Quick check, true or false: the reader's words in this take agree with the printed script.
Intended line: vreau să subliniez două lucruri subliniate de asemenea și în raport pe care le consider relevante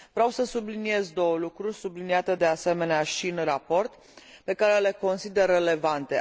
true